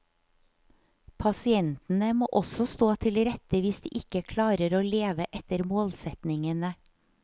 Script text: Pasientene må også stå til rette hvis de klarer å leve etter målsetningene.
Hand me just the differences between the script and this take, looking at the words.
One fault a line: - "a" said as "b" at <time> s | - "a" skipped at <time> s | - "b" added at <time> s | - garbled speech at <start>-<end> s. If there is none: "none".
- "ikke" added at 4.0 s